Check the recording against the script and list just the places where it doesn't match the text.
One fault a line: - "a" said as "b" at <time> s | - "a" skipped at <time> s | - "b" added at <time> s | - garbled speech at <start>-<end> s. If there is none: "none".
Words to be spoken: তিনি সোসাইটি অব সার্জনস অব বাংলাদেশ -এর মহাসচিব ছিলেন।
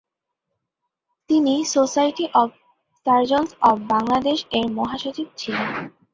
none